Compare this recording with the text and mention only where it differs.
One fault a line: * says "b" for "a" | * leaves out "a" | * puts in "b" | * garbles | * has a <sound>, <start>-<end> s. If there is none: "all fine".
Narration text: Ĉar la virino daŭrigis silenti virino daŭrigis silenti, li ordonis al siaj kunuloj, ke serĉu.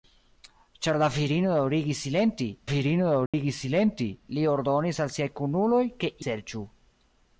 * has a dropout, 3.3-3.3 s